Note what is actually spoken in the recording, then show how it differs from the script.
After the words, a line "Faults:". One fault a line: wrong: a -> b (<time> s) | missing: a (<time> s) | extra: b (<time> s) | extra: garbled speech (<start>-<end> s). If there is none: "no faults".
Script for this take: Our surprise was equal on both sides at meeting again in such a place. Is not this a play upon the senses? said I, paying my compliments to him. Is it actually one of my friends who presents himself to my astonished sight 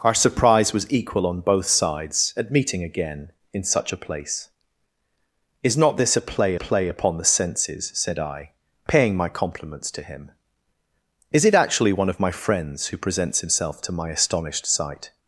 Our surprise was equal on both sides at meeting again in such a place. Is not this a play play upon the senses? said I, paying my compliments to him. Is it actually one of my friends who presents himself to my astonished sight
Faults:
extra: play (6.5 s)